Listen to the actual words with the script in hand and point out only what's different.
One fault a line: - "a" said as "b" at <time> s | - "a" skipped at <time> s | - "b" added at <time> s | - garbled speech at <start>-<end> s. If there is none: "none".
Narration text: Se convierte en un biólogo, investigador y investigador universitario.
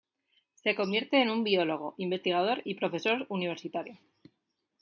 - "investigador" said as "profesor" at 2.7 s